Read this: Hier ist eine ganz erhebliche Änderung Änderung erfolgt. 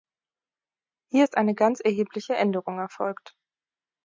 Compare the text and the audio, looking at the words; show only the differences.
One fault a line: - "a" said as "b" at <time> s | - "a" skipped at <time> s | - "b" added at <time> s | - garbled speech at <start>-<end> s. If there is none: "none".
- "Änderung" skipped at 2.8 s